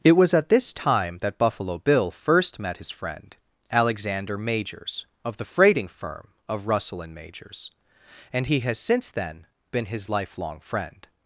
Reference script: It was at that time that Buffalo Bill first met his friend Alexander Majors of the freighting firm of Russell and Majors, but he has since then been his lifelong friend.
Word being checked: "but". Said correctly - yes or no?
no